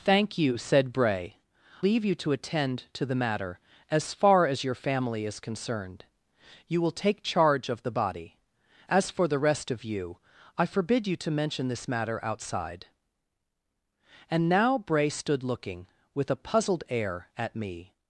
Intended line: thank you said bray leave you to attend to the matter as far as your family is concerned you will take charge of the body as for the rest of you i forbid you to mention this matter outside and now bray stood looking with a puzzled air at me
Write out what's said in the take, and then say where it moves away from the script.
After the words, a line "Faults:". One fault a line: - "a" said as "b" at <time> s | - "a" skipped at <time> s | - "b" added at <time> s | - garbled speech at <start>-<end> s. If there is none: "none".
thank you said bray leave you to attend to the matter as far as your family is concerned you will take charge of the body as for the rest of you i forbid you to mention this matter outside and now bray stood looking with a puzzled air at me
Faults:
none